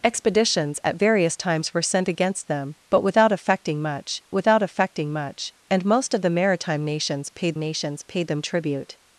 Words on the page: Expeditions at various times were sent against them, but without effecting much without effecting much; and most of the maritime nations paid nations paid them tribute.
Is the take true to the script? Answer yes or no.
yes